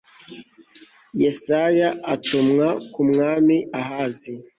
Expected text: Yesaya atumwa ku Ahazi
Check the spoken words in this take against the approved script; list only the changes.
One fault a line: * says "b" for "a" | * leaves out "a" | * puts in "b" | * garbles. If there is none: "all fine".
* puts in "mwami"